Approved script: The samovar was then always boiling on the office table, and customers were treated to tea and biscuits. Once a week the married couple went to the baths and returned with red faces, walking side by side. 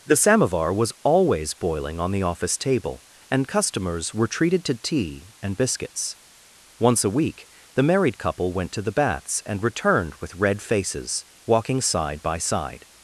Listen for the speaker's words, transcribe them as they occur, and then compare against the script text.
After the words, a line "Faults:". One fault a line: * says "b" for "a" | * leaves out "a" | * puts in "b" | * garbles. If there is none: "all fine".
The samovar was always boiling on the office table, and customers were treated to tea and biscuits. Once a week the married couple went to the baths and returned with red faces, walking side by side.
Faults:
* leaves out "then"